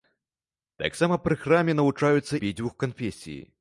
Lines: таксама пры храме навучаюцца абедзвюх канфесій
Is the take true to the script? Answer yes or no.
yes